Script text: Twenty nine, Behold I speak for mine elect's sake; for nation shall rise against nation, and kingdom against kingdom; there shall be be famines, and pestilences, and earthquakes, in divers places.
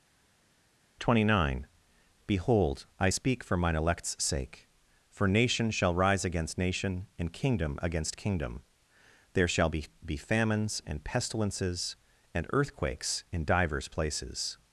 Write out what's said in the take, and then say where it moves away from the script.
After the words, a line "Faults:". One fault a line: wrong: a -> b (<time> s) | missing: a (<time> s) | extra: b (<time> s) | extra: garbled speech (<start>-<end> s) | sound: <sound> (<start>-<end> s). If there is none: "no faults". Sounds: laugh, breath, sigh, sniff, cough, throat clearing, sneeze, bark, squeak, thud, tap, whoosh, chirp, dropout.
Twenty nine, Behold I speak for mine elect's sake; for nation shall rise against nation, and kingdom against kingdom; there shall be be famines, and pestilences, and earthquakes, in divers places.
Faults:
no faults